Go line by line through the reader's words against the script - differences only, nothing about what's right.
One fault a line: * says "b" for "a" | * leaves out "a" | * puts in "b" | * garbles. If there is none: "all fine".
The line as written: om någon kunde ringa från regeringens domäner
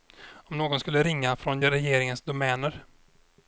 * says "skulle" for "kunde"